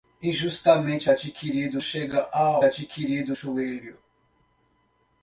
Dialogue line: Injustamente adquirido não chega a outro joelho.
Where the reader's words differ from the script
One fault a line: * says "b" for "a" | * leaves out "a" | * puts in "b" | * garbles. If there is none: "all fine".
* leaves out "não"
* says "adquirido" for "outro"